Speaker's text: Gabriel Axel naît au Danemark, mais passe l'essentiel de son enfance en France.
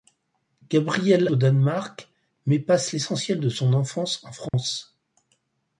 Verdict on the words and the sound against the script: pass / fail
fail